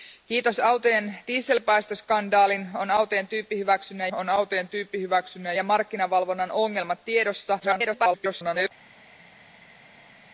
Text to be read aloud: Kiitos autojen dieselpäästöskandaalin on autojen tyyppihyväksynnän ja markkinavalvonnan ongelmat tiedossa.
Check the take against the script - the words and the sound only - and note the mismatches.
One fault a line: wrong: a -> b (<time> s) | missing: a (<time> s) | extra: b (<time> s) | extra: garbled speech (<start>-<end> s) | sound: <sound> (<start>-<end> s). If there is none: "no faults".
extra: on autojen tyyppihyväksynnän (4.1 s)
extra: garbled speech (7.6-8.7 s)